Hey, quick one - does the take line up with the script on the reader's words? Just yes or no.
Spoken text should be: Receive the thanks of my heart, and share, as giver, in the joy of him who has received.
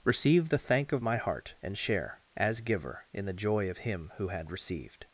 no